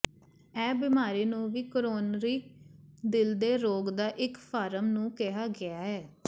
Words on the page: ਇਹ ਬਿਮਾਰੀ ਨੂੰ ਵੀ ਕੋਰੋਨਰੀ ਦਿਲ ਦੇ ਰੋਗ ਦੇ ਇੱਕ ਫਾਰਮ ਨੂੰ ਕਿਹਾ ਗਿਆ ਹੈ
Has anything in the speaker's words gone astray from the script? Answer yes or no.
yes